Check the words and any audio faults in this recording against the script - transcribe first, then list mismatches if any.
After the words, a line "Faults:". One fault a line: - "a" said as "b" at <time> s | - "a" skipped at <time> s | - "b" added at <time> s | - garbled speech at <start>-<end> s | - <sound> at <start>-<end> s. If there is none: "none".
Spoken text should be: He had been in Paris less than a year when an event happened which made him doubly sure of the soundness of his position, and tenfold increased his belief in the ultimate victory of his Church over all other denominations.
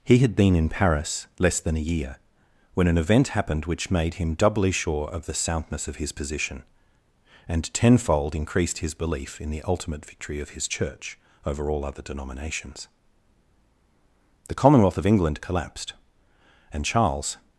He had been in Paris less than a year when an event happened which made him doubly sure of the soundness of his position, and tenfold increased his belief in the ultimate victory of his Church over all other denominations. The Commonwealth of England collapsed, and Charles
Faults:
- "The Commonwealth of England collapsed and Charles" added at 14.5 s